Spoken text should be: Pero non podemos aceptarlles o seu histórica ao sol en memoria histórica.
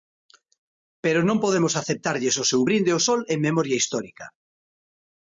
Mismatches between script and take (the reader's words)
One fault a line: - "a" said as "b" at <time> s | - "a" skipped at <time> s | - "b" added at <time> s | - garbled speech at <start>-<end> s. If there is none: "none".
- "histórica" said as "brinde" at 2.7 s